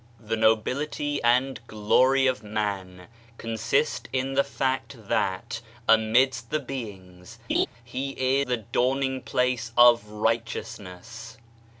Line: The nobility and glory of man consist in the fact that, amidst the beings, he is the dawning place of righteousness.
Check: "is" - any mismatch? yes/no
yes